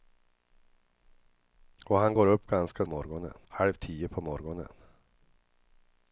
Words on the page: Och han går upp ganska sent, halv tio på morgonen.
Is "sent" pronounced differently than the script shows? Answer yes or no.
yes